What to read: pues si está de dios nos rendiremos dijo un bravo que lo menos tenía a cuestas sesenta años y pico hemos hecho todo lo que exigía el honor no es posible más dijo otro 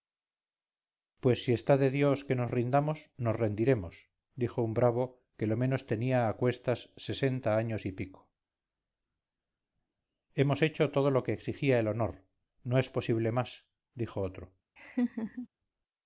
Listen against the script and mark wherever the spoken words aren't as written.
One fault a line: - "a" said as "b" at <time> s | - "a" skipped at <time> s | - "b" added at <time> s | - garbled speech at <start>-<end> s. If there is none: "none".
- "que nos rindamos" added at 2.2 s